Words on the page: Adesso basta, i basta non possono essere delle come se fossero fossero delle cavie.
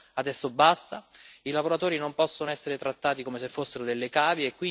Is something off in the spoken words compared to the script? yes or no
yes